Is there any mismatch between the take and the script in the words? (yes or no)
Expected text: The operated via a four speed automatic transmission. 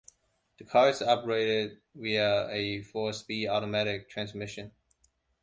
yes